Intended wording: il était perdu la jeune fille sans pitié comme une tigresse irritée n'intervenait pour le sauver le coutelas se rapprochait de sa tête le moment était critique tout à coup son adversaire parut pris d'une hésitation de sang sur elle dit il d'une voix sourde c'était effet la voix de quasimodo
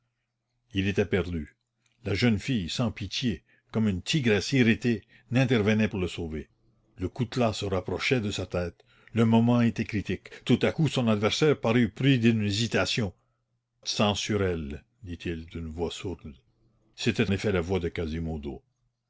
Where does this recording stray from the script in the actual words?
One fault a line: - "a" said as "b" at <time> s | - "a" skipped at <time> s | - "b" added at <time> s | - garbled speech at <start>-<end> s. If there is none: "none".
none